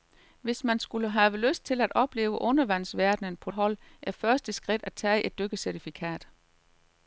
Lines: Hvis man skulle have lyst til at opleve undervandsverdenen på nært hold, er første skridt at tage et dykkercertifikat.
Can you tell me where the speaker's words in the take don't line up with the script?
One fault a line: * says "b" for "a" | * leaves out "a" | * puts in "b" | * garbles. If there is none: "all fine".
* leaves out "nært"